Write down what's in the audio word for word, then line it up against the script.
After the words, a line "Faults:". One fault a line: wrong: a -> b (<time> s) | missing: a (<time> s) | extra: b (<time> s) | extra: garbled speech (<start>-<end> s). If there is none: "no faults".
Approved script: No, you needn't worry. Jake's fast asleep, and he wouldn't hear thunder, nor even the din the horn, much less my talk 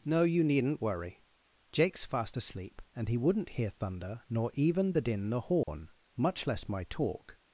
No, you needn't worry. Jake's fast asleep, and he wouldn't hear thunder, nor even the din the horn, much less my talk
Faults:
no faults